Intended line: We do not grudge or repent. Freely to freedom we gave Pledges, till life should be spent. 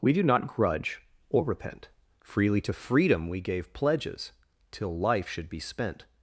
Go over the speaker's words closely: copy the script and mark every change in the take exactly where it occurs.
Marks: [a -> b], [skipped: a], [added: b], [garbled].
We do not grudge or repent. Freely to freedom we gave Pledges, till life should be spent.